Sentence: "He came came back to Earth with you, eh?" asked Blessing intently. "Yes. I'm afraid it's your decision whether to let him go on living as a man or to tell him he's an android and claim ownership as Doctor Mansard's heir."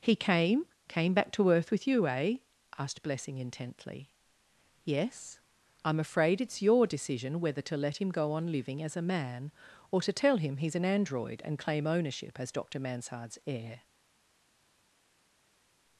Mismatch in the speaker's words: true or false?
false